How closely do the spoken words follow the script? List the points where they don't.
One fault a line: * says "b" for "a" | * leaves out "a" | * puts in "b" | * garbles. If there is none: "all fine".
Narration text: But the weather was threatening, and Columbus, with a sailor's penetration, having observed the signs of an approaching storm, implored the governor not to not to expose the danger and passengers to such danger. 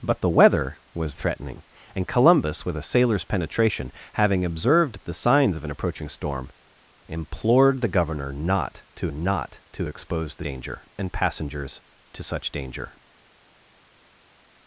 all fine